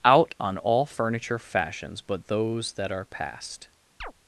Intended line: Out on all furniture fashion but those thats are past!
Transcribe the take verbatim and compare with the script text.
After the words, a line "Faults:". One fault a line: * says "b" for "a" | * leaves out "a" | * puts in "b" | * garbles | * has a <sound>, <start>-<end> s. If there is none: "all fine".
Out on all furniture fashions but those that are past!
Faults:
* says "fashions" for "fashion"
* says "that" for "thats"
* has a chirp, 4.0-4.1 s